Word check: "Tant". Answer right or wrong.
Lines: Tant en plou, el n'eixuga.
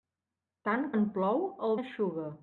right